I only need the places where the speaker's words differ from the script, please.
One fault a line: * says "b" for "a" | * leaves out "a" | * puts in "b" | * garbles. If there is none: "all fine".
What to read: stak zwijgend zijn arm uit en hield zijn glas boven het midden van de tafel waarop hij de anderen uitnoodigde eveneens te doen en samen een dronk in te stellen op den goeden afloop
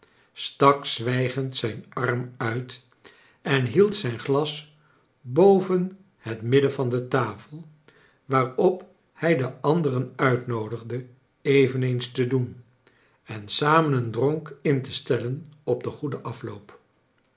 all fine